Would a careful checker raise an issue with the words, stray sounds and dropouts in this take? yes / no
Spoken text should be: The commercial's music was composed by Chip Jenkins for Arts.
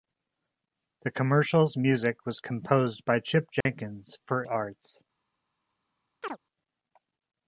yes